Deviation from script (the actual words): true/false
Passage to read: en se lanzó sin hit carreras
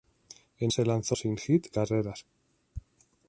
false